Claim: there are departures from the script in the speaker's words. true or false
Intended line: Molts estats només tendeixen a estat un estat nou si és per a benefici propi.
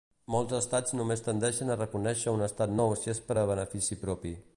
true